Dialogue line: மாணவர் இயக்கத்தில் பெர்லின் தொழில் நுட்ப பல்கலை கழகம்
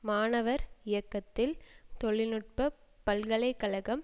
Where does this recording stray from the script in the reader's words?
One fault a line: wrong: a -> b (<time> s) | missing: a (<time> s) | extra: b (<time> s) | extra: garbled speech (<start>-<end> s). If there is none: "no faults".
missing: பெர்லின் (1.5 s)